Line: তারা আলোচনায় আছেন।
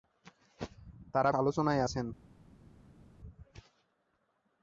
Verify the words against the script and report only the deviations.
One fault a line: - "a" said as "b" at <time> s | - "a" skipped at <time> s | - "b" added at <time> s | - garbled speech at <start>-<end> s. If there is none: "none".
none